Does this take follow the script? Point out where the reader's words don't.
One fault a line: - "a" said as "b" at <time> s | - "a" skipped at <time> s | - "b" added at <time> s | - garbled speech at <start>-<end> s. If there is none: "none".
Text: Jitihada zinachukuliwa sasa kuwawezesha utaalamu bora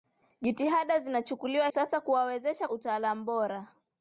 none